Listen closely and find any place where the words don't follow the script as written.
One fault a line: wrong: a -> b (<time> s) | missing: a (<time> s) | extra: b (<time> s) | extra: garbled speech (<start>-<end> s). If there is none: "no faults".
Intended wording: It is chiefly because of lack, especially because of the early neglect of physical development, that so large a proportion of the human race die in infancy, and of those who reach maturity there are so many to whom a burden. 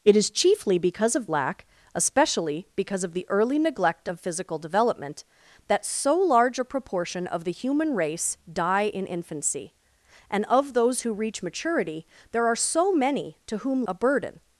no faults